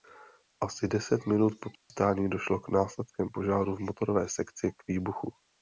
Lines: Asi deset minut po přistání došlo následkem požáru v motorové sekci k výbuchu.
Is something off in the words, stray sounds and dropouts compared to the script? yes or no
yes